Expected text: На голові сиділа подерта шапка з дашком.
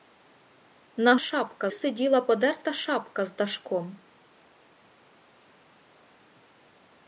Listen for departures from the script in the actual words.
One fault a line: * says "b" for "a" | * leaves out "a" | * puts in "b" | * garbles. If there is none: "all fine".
* says "шапка" for "голові"